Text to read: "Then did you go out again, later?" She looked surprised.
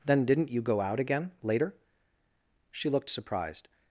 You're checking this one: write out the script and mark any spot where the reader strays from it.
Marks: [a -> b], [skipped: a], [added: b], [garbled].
"Then [did -> didn't] you go out again, later?" She looked surprised.